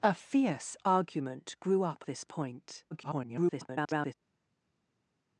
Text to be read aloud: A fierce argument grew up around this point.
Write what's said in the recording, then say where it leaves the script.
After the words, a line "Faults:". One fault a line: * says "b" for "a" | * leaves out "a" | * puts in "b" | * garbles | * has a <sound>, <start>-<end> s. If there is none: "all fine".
A fierce argument grew up this point. [garbled]
Faults:
* leaves out "around"
* garbles